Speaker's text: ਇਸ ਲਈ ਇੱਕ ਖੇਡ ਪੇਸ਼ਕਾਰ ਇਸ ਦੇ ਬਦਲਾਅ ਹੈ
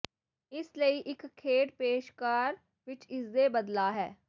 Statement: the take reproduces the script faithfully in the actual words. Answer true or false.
false